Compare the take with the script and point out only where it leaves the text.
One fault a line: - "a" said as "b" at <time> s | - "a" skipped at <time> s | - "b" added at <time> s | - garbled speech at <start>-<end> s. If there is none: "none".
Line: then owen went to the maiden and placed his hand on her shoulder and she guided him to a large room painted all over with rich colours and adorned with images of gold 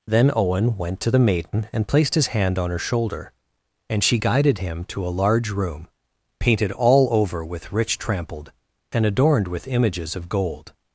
- "colours" said as "trampled" at 8.0 s